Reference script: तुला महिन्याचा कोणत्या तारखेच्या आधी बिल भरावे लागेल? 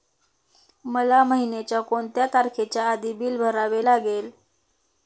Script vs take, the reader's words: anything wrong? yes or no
yes